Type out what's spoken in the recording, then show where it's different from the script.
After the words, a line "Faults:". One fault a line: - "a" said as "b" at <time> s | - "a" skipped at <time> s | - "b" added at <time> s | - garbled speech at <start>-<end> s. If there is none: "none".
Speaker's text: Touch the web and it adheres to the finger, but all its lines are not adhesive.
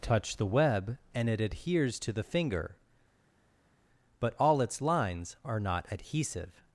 Touch the web and it adheres to the finger, but all its lines are not adhesive.
Faults:
none